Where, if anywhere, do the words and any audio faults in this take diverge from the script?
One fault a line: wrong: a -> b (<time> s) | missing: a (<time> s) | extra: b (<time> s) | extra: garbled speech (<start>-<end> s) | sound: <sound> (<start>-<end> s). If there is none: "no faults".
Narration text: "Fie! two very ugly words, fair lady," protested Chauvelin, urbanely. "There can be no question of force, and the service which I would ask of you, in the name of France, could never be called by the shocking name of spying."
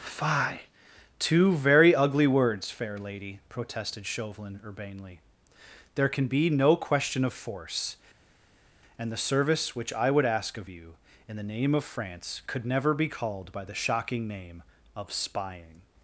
no faults